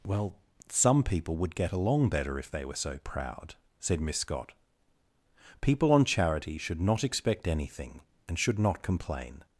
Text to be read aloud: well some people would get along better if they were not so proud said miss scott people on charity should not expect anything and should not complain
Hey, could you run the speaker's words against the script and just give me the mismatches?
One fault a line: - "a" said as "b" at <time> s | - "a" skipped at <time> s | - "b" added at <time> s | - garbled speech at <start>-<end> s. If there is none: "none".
- "not" skipped at 2.8 s